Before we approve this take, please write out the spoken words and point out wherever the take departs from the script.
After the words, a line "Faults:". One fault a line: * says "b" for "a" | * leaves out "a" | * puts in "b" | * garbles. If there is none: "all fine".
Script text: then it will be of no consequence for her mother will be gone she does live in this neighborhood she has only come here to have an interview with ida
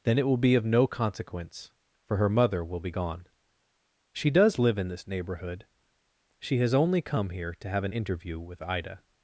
then it will be of no consequence for her mother will be gone she does live in this neighborhood she has only come here to have an interview with ida
Faults:
all fine